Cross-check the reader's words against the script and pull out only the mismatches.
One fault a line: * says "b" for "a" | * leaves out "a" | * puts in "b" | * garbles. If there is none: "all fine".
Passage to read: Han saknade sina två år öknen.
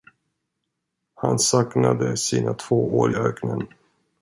all fine